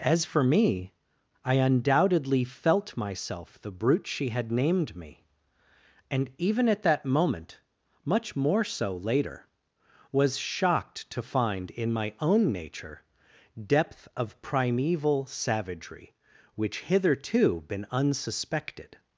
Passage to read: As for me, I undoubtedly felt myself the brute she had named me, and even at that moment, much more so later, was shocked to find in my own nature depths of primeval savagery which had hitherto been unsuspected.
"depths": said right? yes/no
no